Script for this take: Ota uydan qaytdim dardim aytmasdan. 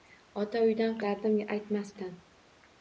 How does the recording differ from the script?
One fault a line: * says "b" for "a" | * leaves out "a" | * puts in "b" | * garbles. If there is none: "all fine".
* leaves out "qaytdim"